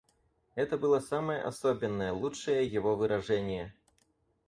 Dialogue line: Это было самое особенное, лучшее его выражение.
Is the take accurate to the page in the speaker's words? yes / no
yes